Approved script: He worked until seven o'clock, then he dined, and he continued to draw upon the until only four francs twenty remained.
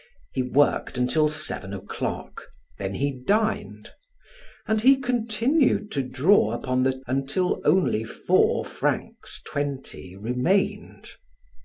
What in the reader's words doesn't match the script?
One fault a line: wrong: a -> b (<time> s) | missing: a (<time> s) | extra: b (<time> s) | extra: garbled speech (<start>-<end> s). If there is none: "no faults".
no faults